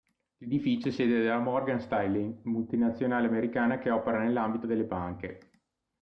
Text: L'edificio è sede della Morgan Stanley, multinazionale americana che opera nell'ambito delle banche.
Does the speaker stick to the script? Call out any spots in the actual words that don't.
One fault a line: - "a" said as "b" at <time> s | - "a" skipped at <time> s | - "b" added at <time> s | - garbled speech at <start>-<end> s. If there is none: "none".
none